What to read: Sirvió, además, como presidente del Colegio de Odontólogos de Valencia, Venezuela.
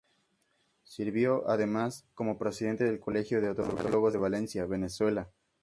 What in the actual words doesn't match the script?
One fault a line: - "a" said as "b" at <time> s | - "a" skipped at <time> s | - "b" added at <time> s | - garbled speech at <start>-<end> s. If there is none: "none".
none